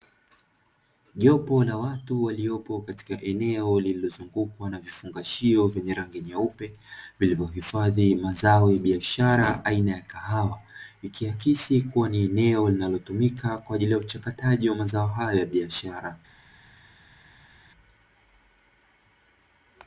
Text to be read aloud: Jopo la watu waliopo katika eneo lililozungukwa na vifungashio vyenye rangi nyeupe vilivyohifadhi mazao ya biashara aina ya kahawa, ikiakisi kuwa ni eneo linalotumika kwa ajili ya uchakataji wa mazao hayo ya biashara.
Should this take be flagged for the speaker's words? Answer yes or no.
no